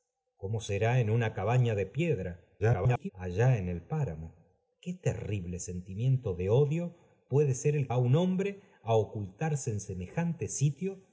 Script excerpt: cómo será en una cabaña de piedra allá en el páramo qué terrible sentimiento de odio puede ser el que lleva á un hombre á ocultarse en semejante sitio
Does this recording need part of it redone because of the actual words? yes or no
yes